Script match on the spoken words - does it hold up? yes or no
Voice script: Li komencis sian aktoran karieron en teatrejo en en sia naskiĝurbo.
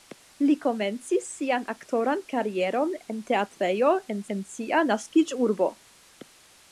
yes